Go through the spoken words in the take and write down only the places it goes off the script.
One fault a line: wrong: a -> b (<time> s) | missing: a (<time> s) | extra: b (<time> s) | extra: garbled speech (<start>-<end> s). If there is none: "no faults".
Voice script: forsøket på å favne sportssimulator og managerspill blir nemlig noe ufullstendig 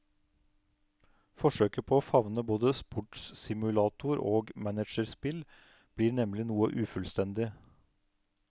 extra: både (2.5 s)